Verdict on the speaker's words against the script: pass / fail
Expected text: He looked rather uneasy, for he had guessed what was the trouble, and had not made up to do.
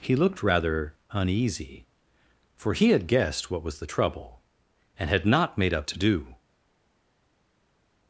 pass